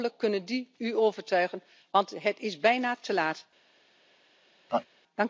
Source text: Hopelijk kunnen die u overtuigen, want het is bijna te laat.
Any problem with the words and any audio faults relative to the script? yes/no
yes